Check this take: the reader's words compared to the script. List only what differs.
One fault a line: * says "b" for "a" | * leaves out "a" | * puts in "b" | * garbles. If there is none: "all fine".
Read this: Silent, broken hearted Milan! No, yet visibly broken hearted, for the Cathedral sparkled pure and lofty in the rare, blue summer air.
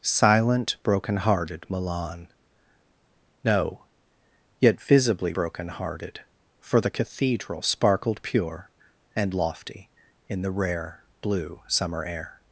all fine